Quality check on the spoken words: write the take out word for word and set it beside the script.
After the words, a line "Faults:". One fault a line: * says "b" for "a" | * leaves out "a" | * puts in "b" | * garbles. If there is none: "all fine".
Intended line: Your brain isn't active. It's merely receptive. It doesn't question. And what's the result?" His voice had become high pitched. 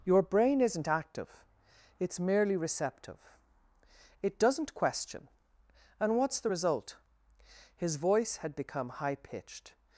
Your brain isn't active. It's merely receptive. It doesn't question. And what's the result?" His voice had become high pitched.
Faults:
all fine